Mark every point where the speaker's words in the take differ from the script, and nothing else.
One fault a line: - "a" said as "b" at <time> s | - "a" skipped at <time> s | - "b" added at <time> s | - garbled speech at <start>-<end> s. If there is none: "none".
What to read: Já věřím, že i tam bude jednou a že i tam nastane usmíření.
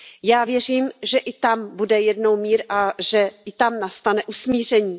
- "mír" added at 2.4 s